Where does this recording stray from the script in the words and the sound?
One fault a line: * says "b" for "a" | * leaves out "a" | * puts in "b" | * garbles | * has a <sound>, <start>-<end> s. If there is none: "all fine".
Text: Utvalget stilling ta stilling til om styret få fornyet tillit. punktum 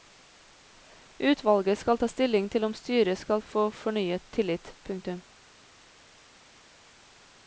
* says "skal" for "stilling"
* puts in "skal"